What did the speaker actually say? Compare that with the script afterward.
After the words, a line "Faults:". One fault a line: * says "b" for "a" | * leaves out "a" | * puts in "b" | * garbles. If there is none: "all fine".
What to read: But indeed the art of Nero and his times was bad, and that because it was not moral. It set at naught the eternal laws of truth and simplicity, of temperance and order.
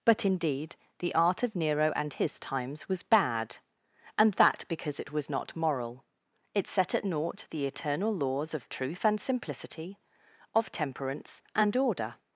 But indeed the art of Nero and his times was bad, and that because it was not moral. It set at naught the eternal laws of truth and simplicity, of temperance and order.
Faults:
all fine